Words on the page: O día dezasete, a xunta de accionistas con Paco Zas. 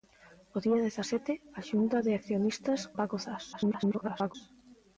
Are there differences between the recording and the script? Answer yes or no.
yes